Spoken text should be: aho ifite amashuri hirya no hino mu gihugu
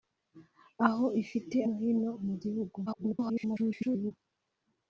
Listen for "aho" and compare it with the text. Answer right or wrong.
right